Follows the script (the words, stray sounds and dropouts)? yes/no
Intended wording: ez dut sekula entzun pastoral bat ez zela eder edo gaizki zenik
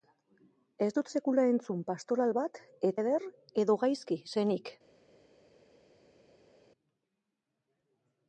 no